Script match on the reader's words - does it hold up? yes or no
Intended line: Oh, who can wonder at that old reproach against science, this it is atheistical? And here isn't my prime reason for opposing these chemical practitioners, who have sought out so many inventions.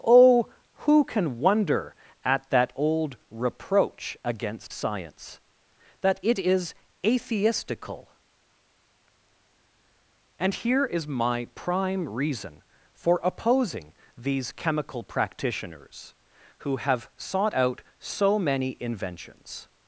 no